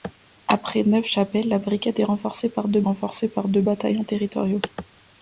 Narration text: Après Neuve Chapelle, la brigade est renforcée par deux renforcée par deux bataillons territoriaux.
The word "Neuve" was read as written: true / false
true